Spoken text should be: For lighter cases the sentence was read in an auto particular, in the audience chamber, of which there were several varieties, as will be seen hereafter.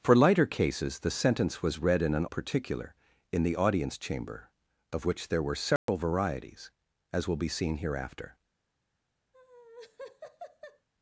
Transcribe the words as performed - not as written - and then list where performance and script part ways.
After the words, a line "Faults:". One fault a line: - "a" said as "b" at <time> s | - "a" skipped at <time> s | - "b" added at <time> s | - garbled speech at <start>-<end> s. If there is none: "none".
For lighter cases the sentence was read in an particular, in the audience chamber, of which there were several varieties, as will be seen hereafter.
Faults:
- "auto" skipped at 2.2 s